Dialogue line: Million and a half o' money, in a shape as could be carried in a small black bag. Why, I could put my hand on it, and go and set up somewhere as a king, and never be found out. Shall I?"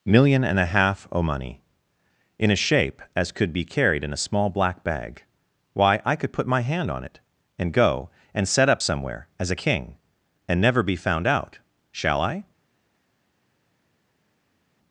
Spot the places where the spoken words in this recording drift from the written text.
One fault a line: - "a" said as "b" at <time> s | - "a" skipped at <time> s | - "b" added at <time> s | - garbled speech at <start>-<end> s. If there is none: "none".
none